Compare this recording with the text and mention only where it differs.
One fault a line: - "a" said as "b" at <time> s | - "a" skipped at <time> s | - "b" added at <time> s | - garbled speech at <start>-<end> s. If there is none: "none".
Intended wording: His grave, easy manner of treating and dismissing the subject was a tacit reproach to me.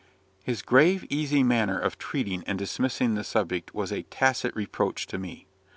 none